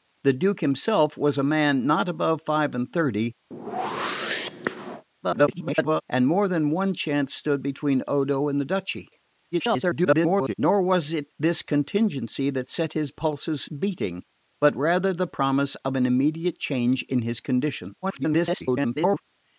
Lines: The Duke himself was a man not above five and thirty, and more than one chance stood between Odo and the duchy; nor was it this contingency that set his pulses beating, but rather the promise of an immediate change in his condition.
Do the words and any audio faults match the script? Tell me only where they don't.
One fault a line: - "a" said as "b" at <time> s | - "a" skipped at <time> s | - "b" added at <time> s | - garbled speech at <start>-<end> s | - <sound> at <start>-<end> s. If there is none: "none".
- whoosh at 3.5-5.0 s
- garbled speech at 5.2-6.0 s
- garbled speech at 9.5-10.5 s
- garbled speech at 18.0-19.2 s